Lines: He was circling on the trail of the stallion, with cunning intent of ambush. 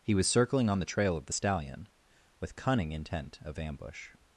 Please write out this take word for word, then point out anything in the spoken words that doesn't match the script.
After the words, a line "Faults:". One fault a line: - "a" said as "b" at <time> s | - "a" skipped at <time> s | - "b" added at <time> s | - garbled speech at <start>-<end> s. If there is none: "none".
He was circling on the trail of the stallion, with cunning intent of ambush.
Faults:
none